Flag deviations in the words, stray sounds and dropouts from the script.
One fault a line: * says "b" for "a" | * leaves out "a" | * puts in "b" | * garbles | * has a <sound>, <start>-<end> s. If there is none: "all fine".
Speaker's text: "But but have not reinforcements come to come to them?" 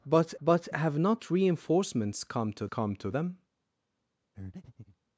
* has a breath, 4.3-5.0 s